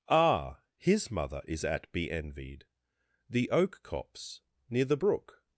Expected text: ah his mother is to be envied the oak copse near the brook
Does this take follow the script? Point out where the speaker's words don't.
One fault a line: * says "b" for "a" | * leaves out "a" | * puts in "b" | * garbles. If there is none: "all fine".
* says "at" for "to"